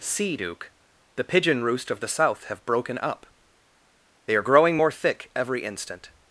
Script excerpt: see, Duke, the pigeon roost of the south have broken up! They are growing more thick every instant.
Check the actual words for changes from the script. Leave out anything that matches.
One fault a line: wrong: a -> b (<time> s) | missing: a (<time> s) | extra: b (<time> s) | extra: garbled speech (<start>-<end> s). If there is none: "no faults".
no faults